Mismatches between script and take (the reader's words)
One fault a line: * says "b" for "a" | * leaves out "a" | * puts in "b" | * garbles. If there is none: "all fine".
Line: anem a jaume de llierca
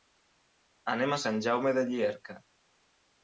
* puts in "sant"